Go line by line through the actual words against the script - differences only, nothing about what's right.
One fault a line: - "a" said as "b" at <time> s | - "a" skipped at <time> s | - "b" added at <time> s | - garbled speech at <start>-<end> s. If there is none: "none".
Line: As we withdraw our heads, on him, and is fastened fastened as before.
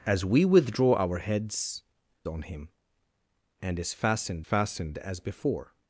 none